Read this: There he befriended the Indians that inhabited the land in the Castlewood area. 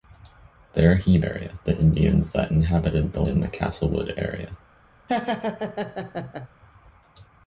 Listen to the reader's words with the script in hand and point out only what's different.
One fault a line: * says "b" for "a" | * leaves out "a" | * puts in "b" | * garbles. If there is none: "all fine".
* says "area" for "befriended"
* leaves out "land"